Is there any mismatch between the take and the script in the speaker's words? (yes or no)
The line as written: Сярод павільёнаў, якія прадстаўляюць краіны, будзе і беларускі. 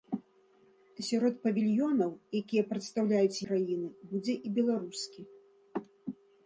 no